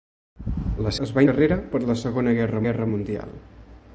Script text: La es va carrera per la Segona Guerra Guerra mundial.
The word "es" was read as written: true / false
true